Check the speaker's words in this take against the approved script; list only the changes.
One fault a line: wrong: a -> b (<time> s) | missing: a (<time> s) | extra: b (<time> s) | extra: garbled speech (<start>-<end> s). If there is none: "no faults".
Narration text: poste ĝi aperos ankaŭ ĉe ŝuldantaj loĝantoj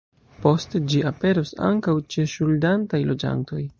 no faults